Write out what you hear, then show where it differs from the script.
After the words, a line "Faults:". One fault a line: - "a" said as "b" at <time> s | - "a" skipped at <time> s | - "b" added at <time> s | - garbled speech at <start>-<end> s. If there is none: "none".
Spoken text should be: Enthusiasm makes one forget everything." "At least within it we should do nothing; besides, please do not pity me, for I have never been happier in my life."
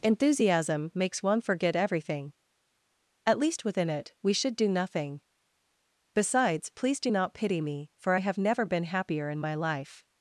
Enthusiasm makes one forget everything." "At least within it we should do nothing; besides, please do not pity me, for I have never been happier in my life."
Faults:
none